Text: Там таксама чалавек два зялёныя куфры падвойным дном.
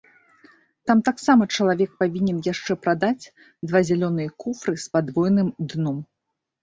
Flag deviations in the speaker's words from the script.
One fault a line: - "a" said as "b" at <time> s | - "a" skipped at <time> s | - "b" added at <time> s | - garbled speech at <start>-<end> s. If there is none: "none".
- "павінен яшчэ прадаць" added at 2.0 s
- "з" added at 4.8 s